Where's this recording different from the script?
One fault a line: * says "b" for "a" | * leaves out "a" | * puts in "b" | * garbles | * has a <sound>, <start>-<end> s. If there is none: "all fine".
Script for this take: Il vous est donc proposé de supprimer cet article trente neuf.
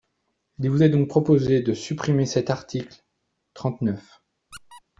* has a squeak, 4.5-4.8 s